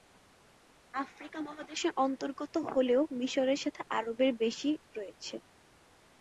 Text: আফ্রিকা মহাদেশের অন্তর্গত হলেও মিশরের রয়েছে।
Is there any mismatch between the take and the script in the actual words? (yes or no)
yes